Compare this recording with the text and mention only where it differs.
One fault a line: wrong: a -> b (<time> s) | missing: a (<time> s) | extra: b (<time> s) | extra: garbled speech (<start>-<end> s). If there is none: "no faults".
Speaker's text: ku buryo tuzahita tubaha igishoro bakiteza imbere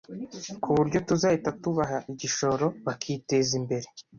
no faults